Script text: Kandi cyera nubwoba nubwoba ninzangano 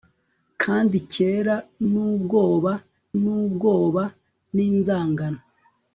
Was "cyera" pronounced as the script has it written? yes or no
yes